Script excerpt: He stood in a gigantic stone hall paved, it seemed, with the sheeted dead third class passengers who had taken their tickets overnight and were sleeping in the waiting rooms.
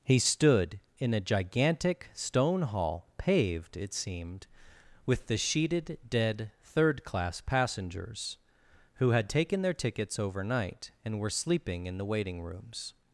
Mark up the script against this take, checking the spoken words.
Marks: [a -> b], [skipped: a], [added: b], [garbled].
He stood in a gigantic stone hall paved, it seemed, with the sheeted dead third class passengers who had taken their tickets overnight and were sleeping in the waiting rooms.